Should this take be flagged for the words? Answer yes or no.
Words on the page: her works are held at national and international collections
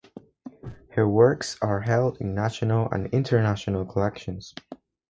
yes